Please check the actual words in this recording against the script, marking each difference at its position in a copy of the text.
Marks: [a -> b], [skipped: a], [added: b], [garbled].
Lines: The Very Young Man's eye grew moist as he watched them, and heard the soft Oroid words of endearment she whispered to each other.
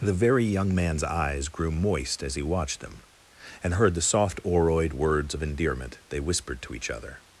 The Very Young Man's [eye -> eyes] grew moist as he watched them, and heard the soft Oroid words of endearment [she -> they] whispered to each other.